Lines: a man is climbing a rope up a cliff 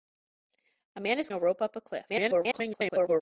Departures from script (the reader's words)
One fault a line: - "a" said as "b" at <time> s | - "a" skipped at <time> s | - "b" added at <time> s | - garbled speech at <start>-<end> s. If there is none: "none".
- "climbing" skipped at 1.3 s
- garbled speech at 2.1-3.2 s